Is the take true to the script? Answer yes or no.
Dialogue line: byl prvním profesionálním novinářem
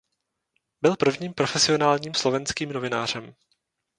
no